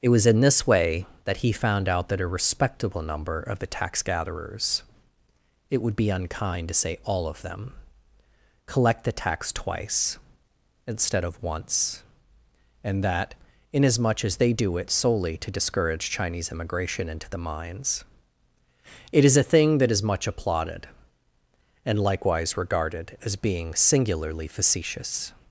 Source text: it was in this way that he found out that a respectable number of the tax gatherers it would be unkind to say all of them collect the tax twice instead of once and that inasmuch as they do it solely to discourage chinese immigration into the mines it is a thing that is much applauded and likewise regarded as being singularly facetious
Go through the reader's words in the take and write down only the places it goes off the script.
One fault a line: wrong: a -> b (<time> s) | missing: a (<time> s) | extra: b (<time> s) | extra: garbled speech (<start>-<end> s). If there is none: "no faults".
no faults